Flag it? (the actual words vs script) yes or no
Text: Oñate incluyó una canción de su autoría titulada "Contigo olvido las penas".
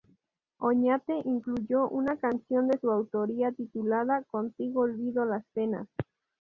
no